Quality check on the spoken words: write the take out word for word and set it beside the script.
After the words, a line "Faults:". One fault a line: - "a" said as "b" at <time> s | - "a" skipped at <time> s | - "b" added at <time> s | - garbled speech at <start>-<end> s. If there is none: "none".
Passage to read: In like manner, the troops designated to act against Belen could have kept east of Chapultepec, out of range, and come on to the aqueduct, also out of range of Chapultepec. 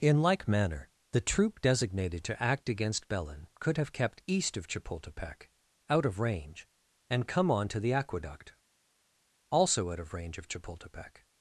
In like manner, the troop designated to act against Belen could have kept east of Chapultepec, out of range, and come on to the aqueduct, also out of range of Chapultepec.
Faults:
- "troops" said as "troop" at 1.2 s